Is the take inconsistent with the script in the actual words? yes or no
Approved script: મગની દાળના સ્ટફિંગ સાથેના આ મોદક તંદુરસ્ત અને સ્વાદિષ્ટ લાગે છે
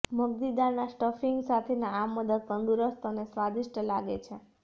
no